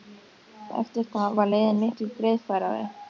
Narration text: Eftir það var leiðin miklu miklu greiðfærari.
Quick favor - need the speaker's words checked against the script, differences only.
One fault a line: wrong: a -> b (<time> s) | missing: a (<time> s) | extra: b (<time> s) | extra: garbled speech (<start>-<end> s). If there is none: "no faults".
missing: miklu (2.1 s)